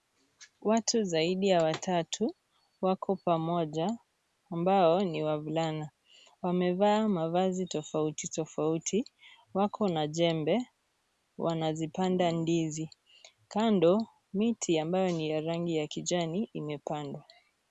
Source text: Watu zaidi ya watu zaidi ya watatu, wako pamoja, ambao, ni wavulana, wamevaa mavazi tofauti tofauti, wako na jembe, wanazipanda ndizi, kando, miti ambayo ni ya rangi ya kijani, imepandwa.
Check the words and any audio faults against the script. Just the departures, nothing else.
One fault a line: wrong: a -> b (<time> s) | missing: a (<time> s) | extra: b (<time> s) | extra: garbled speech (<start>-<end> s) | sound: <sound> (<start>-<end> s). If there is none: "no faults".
missing: watu zaidi ya (1.6 s)